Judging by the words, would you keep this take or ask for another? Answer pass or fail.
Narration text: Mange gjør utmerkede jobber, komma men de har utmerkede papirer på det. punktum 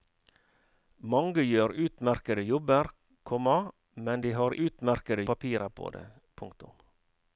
pass